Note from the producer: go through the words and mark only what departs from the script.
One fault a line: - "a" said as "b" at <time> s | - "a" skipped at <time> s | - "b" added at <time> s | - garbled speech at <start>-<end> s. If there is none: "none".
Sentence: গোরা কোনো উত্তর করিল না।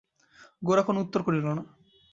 none